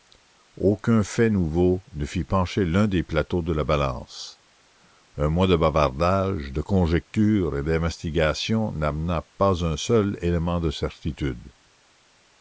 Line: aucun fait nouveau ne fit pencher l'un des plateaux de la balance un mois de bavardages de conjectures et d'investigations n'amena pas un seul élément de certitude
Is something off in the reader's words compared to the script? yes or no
no